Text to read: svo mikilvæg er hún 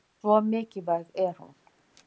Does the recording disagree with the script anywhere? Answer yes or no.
no